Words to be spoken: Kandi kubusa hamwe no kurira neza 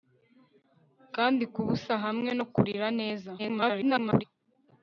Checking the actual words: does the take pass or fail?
fail